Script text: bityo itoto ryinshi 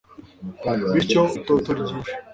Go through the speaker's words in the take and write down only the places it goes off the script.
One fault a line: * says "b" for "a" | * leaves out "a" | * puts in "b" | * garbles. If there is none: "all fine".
all fine